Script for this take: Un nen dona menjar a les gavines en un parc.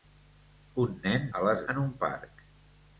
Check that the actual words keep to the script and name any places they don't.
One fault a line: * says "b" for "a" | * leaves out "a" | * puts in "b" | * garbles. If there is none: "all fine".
* leaves out "dona menjar"
* leaves out "gavines"